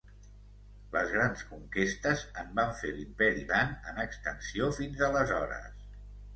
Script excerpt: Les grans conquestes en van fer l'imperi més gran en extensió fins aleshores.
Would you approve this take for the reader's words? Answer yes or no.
no